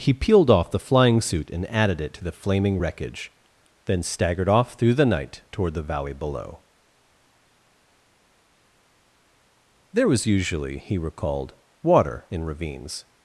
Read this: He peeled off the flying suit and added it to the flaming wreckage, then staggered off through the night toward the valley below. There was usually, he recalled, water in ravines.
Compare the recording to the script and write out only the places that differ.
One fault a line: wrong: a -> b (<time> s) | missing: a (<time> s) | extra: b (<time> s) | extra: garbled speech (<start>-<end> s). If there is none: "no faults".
no faults